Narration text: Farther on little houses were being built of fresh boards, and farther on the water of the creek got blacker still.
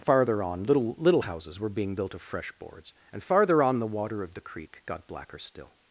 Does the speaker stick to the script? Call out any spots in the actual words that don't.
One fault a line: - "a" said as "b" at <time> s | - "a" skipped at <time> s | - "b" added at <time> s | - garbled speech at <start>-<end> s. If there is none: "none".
- "little" added at 1.0 s